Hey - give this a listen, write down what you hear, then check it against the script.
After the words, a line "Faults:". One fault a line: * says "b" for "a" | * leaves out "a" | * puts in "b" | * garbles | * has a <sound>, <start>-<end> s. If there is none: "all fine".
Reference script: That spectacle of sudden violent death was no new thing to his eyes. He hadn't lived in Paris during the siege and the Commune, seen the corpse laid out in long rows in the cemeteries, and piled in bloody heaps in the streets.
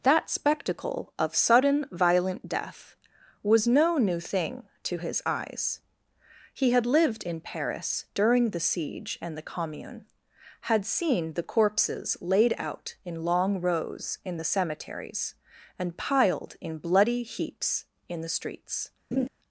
That spectacle of sudden violent death was no new thing to his eyes. He had lived in Paris during the siege and the Commune, had seen the corpses laid out in long rows in the cemeteries, and piled in bloody heaps in the streets.
Faults:
* says "had" for "hadn't"
* puts in "had"
* says "corpses" for "corpse"
* has a laugh, 19.1-19.3 s